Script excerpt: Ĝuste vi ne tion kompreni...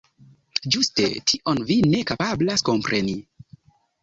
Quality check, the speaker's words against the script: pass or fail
fail